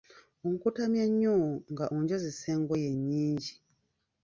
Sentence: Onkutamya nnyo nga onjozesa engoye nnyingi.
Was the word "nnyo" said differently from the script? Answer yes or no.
no